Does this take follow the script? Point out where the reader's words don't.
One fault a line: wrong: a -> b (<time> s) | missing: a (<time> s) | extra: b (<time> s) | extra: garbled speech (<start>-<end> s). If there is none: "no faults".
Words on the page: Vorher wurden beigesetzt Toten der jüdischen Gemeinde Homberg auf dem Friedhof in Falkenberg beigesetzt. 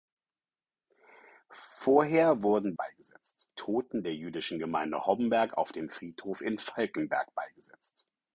no faults